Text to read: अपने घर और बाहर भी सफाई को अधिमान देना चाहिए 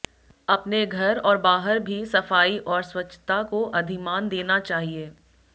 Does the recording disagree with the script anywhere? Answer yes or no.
yes